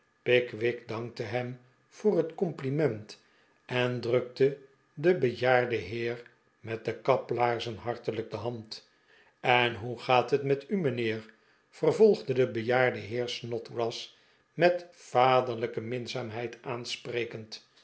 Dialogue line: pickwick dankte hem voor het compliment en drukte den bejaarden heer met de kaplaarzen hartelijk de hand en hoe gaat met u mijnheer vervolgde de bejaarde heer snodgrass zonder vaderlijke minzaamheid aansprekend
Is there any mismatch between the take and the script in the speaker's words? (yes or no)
yes